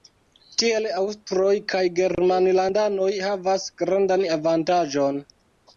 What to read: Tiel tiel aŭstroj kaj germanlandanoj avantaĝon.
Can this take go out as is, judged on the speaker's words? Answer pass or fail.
fail